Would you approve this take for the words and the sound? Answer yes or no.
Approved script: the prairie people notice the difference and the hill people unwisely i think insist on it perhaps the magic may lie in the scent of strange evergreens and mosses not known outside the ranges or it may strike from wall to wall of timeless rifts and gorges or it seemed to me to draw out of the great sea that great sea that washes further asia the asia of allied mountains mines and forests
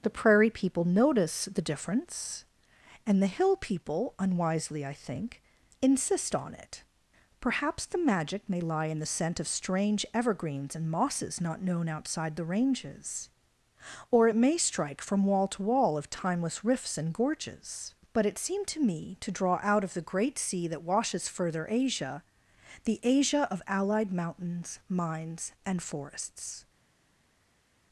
no